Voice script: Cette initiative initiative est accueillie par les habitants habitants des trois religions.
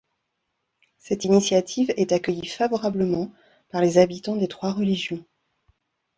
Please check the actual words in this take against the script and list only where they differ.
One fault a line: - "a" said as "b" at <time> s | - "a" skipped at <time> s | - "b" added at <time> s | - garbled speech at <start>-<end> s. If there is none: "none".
- "initiative" skipped at 1.9 s
- "favorablement" added at 2.5 s
- "habitants" skipped at 4.4 s